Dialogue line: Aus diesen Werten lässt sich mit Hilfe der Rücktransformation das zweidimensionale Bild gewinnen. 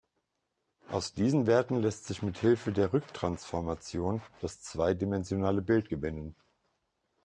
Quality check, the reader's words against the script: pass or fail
pass